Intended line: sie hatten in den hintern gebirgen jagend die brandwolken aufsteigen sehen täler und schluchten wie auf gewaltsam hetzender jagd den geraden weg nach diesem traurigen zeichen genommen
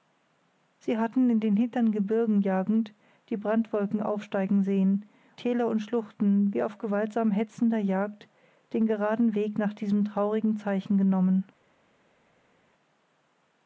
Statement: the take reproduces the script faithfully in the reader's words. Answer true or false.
true